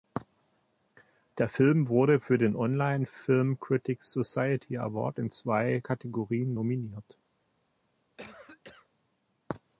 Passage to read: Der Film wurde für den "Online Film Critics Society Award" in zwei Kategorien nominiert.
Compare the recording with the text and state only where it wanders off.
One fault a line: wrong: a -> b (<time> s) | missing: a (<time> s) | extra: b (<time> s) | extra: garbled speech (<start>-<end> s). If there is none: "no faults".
no faults